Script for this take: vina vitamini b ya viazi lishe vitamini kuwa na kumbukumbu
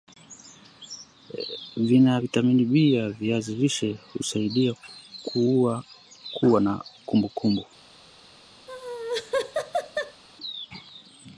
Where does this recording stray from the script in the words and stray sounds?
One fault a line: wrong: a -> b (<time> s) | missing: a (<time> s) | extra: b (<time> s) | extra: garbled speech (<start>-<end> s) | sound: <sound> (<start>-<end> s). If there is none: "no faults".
wrong: vitamini -> husaidia (4.1 s)
sound: laugh (8.7-10.2 s)